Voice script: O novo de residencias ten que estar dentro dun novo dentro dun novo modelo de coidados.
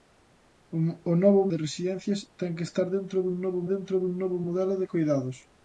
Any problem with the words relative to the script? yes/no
no